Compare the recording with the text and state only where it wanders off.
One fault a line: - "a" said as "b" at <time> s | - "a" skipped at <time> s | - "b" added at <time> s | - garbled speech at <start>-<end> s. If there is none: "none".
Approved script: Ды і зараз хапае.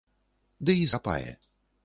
- "зараз" skipped at 0.9 s